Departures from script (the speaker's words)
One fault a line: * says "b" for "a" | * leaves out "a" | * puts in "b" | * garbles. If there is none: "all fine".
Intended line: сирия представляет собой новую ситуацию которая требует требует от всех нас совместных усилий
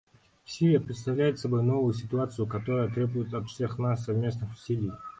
* leaves out "требует"